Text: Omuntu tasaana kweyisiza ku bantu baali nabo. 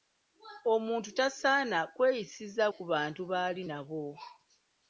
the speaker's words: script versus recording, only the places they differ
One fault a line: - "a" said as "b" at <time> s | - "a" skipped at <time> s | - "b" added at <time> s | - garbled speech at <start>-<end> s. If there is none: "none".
none